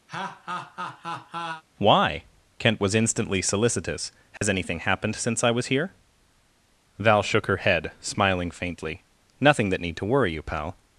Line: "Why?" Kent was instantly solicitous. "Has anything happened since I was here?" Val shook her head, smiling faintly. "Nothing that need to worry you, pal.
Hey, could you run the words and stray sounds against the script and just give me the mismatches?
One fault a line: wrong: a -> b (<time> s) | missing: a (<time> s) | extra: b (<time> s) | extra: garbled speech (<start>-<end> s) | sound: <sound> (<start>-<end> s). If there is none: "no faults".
sound: laugh (0.1-1.6 s)
sound: dropout (4.4-4.4 s)